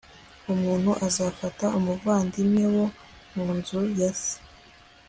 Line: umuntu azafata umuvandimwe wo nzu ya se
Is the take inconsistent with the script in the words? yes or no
yes